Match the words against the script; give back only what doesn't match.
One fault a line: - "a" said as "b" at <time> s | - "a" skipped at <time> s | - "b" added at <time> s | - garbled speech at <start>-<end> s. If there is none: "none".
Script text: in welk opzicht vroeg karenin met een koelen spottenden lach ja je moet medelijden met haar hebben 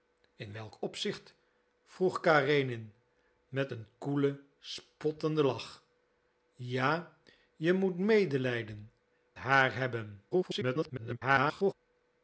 - "met" skipped at 8.9 s
- garbled speech at 10.3-11.7 s